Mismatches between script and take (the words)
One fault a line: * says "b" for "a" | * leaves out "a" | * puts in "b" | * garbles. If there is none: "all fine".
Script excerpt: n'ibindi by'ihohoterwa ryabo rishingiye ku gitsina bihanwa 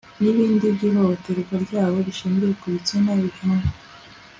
all fine